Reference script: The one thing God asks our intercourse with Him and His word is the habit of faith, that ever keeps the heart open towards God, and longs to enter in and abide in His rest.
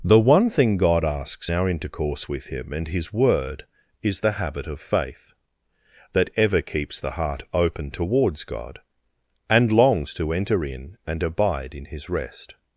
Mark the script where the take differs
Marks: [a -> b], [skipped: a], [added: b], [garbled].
The one thing God asks our intercourse with Him and His word is the habit of faith, that ever keeps the heart open towards God, and longs to enter in and abide in His rest.